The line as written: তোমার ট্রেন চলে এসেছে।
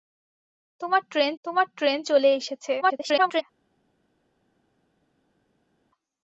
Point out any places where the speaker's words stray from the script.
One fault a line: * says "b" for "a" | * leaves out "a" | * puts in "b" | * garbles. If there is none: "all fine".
* puts in "তোমার ট্রেন"
* garbles